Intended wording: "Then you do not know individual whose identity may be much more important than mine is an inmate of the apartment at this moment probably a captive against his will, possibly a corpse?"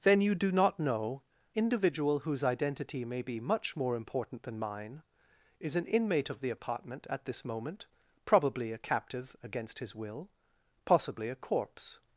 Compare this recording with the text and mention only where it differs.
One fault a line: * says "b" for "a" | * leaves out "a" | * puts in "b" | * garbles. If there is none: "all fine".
all fine